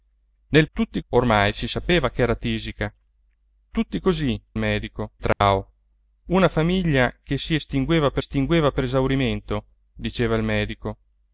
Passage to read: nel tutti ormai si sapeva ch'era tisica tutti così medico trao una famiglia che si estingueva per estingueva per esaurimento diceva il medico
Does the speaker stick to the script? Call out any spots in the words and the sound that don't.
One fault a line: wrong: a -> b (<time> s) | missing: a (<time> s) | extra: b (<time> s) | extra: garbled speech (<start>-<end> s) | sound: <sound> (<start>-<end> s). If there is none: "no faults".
sound: dropout (5.3-5.4 s)